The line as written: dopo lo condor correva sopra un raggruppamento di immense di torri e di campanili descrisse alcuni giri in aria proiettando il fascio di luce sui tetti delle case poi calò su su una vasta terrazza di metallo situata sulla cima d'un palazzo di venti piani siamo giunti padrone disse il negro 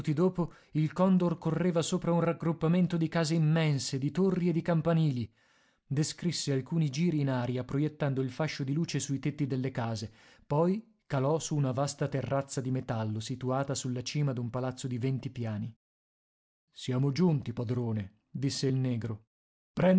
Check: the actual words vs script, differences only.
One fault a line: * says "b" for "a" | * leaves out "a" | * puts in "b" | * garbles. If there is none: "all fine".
* says "il" for "lo"
* puts in "case"
* leaves out "su"